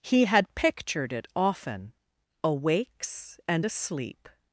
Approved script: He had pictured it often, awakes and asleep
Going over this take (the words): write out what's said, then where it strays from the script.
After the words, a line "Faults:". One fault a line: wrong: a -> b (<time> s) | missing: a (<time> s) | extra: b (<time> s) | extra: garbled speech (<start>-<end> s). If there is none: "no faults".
He had pictured it often, awakes and asleep
Faults:
no faults